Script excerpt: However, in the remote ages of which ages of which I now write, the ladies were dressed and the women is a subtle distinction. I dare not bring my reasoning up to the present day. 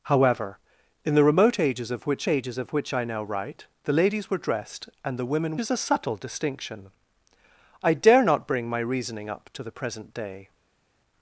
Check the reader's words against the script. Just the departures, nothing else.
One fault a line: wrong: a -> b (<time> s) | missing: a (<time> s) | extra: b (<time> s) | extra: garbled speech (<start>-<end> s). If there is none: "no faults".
no faults